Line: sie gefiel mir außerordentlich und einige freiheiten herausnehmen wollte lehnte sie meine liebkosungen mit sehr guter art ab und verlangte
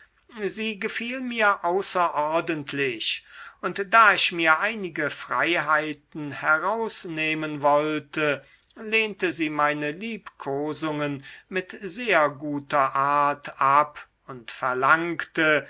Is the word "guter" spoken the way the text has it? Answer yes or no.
yes